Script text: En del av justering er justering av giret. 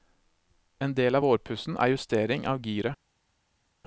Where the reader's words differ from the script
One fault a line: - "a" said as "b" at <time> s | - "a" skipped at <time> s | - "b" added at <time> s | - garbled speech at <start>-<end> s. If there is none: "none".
- "justering" said as "vårpussen" at 1.2 s